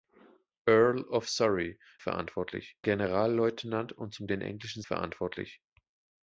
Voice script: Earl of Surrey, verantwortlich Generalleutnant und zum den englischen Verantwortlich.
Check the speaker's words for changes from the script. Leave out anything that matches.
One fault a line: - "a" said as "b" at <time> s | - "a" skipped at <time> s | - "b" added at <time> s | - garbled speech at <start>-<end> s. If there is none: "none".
none